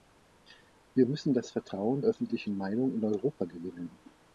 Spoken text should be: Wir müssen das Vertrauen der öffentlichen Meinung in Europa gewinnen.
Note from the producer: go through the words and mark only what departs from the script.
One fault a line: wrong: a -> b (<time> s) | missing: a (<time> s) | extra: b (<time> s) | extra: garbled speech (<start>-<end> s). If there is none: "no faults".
missing: der (2.0 s)